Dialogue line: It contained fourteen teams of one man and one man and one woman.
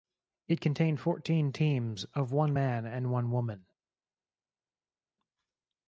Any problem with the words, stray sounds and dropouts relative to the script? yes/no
yes